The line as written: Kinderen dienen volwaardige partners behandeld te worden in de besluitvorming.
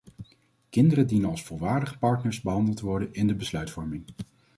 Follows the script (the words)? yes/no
no